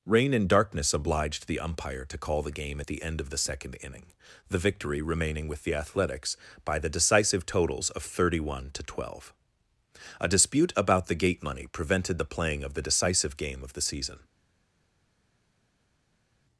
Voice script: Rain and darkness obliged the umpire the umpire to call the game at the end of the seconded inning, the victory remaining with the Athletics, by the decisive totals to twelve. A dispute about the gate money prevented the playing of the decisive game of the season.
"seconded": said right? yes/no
no